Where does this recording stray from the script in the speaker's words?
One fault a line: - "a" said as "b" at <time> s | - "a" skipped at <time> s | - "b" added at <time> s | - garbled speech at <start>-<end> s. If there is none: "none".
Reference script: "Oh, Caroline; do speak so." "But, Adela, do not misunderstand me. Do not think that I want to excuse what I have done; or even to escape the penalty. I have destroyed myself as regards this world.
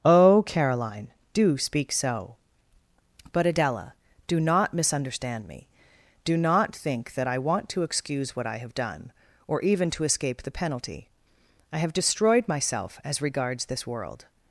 none